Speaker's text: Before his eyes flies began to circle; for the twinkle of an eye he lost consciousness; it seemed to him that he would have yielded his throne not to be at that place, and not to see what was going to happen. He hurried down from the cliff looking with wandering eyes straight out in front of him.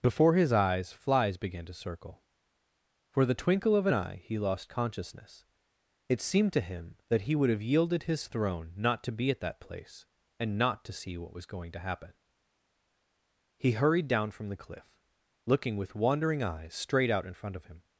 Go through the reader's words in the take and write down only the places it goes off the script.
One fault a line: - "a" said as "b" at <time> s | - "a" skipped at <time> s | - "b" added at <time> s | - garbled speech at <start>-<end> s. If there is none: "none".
none